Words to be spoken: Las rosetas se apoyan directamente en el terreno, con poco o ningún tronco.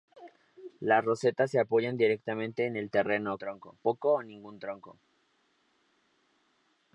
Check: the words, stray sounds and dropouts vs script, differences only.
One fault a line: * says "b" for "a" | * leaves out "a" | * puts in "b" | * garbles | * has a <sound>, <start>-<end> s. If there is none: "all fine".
* says "tronco" for "con"